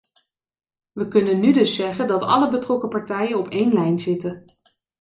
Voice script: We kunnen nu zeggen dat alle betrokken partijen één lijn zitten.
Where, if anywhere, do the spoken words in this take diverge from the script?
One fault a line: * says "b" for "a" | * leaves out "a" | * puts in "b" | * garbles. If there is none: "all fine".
* puts in "dus"
* puts in "op"